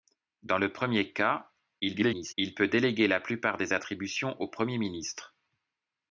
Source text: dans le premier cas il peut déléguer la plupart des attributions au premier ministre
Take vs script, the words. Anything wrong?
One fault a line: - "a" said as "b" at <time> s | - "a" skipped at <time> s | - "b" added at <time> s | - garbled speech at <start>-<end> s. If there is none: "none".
- garbled speech at 1.8-2.3 s